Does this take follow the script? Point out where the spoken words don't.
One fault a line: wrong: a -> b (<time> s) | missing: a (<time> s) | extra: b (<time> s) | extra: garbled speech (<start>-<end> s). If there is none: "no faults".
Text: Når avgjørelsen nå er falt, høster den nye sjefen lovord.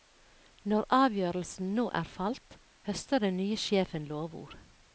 no faults